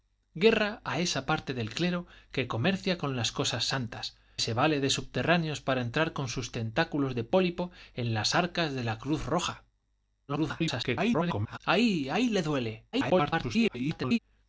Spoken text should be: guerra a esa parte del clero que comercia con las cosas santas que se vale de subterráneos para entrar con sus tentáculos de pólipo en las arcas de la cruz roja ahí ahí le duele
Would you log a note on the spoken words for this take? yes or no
yes